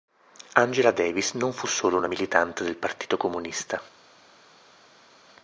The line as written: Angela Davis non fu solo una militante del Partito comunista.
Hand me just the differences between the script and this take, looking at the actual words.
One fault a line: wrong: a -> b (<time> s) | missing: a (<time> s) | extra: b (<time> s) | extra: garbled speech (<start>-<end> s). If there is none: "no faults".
no faults